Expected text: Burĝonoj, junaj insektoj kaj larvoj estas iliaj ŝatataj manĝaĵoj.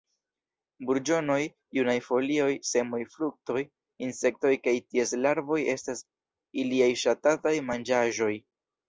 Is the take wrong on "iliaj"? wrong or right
right